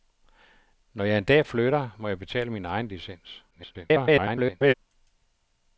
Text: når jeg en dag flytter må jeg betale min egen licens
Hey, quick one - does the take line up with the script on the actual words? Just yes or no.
no